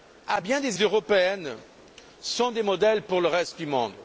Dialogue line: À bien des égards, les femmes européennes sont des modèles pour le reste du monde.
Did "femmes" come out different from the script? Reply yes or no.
yes